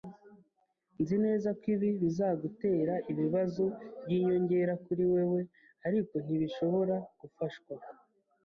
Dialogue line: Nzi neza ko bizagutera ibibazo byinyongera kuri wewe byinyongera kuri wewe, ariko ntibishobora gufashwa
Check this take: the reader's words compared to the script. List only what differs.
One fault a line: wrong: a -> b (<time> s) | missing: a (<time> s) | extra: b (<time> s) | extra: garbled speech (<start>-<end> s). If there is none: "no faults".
extra: ibi (1.8 s)
missing: byinyongera kuri wewe (5.4 s)